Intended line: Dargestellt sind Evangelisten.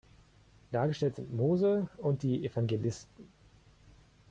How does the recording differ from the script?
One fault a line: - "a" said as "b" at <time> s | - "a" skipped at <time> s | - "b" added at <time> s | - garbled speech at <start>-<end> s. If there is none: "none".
- "Mose und die" added at 1.3 s